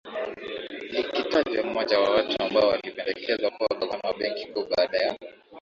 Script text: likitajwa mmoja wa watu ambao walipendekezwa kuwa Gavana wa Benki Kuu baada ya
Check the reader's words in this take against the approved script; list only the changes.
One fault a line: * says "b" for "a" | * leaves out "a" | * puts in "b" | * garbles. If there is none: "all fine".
all fine